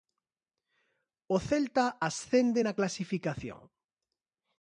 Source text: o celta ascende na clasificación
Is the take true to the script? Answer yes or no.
yes